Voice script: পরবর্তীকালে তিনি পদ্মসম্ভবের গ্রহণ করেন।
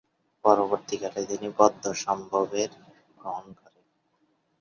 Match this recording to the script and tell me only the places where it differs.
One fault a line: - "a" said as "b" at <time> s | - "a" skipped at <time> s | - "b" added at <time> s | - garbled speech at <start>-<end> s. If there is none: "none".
none